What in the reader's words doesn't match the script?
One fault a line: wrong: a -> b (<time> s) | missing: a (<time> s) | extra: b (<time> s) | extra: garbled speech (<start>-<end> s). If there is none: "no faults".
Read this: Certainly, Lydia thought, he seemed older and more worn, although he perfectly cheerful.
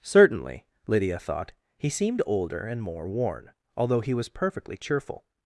extra: was (4.1 s)